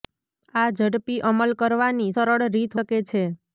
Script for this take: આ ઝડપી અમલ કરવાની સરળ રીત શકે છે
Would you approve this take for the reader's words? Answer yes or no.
yes